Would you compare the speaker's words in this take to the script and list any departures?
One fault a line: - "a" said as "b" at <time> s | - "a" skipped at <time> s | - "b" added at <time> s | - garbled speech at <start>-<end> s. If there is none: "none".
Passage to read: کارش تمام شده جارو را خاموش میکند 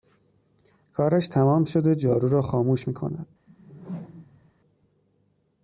none